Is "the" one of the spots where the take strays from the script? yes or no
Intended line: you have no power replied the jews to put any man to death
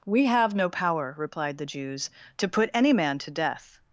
no